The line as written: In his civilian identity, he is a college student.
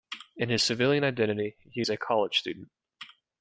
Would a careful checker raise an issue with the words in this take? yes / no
no